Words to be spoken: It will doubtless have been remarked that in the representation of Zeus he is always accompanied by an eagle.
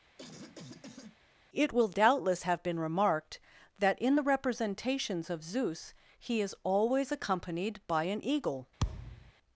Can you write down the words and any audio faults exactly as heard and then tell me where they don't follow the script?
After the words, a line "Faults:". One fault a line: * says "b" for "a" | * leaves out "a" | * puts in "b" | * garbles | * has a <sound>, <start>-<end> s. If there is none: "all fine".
It will doubtless have been remarked that in the representations of Zeus he is always accompanied by an eagle.
Faults:
* has a cough, 0.2-1.2 s
* says "representations" for "representation"
* has a thud, 8.8-9.3 s